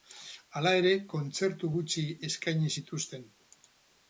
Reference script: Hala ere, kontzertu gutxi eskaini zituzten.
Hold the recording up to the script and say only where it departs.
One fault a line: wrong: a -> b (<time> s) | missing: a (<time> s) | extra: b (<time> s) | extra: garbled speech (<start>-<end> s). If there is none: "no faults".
no faults